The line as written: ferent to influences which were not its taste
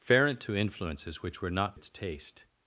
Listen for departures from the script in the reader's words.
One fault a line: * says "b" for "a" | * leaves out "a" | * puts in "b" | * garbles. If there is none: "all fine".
all fine